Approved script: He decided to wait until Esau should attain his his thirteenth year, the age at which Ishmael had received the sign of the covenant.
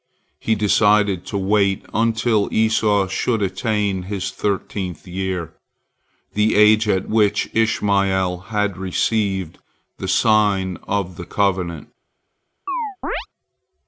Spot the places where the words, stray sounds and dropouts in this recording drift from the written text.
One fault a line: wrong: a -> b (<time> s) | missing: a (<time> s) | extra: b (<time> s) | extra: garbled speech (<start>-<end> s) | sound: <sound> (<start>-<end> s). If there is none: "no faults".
missing: his (4.3 s)
sound: chirp (12.7-13.3 s)